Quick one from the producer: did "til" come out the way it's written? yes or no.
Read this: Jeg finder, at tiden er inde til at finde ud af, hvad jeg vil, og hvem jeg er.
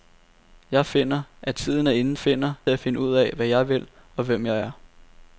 no